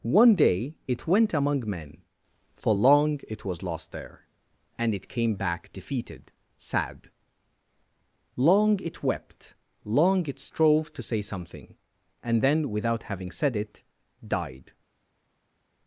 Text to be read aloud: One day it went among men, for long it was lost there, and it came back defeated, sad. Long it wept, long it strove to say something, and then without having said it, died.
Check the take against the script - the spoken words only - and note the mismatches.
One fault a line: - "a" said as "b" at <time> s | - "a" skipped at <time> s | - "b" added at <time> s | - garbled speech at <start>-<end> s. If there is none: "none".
none